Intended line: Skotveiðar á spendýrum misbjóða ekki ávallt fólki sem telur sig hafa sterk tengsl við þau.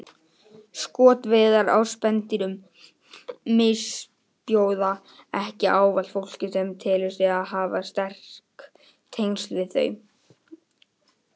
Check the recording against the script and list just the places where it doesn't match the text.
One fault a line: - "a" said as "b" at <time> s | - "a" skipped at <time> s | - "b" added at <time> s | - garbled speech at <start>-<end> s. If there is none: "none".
none